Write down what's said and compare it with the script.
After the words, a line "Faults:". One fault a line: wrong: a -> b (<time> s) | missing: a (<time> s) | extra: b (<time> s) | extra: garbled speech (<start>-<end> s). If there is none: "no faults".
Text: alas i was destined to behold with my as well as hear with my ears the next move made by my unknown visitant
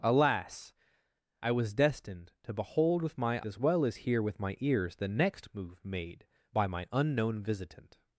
alas i was destined to behold with my as well as hear with my ears the next move made by my unknown visitant
Faults:
no faults